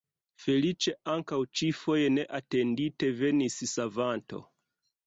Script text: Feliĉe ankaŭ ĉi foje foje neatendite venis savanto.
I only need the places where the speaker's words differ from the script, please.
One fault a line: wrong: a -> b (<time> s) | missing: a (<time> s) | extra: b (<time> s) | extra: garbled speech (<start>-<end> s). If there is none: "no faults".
missing: foje (2.1 s)